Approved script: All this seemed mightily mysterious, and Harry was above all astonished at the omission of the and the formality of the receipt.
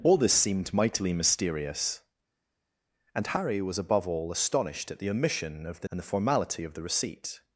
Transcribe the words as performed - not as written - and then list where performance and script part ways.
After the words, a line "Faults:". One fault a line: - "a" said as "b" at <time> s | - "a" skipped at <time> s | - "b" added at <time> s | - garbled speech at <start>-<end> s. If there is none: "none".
All this seemed mightily mysterious, and Harry was above all astonished at the omission of the and the formality of the receipt.
Faults:
none